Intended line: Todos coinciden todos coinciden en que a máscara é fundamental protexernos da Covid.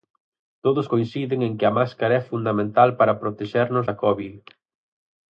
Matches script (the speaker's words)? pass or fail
fail